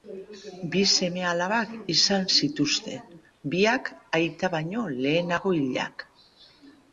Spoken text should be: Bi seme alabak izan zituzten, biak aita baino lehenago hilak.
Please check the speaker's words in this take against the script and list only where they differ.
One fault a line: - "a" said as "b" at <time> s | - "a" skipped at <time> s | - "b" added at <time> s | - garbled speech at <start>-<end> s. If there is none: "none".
none